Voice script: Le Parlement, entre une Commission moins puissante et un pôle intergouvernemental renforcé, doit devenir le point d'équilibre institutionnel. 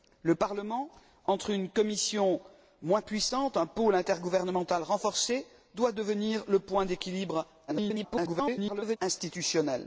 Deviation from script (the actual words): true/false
true